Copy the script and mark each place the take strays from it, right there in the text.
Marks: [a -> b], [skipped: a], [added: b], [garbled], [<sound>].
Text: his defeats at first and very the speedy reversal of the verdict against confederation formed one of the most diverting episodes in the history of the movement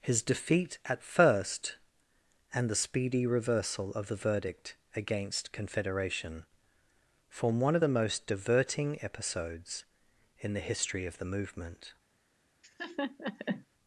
his [defeats -> defeat] at first and [skipped: very] the speedy reversal of the verdict against confederation [formed -> form] one of the most diverting episodes in the history of the movement [laugh]